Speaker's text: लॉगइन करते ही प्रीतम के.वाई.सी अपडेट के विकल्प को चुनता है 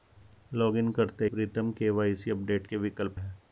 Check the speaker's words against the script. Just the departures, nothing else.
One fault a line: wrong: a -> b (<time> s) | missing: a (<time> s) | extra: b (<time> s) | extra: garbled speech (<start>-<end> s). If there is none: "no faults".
missing: ही (1.2 s)
missing: को चुनता (3.2 s)